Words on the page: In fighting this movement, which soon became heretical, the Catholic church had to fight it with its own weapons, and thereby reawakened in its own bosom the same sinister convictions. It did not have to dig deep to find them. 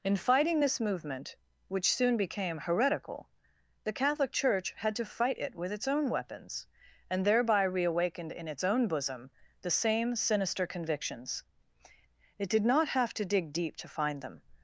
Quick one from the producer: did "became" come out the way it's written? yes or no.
yes